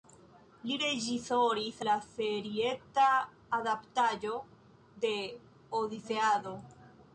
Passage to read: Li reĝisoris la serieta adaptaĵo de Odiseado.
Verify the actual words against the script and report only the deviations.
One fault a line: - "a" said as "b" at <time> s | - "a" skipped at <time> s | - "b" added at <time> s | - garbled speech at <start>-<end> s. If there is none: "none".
none